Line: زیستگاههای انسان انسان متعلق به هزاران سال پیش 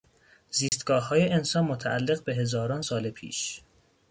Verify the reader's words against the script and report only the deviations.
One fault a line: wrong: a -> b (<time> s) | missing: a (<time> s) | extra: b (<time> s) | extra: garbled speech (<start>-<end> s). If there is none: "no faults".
missing: انسان (1.6 s)